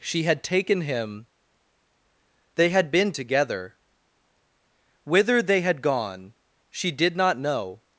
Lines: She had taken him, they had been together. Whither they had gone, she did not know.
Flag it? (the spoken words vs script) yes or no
no